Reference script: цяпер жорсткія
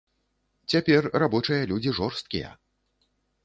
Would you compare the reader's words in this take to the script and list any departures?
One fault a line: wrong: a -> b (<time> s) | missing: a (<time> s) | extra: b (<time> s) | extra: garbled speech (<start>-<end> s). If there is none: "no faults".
extra: рабочыя людзі (1.2 s)